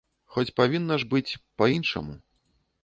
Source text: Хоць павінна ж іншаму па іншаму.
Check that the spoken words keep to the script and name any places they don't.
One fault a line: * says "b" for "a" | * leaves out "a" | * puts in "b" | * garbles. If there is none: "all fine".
* says "быць" for "іншаму"